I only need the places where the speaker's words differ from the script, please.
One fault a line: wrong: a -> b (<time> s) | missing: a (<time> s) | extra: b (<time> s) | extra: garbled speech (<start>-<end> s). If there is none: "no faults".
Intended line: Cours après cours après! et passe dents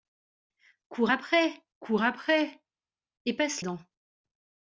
no faults